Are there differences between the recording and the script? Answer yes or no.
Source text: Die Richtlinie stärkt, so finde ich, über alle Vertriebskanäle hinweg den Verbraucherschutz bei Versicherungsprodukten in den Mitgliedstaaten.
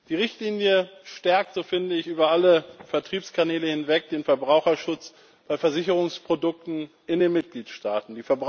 no